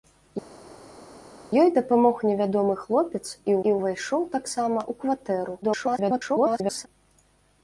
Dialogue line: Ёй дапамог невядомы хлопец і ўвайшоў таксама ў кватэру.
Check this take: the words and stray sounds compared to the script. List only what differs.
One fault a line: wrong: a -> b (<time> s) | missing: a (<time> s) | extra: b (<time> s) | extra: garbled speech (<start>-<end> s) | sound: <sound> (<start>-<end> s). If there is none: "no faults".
extra: і (3.7 s)
extra: garbled speech (5.6-6.9 s)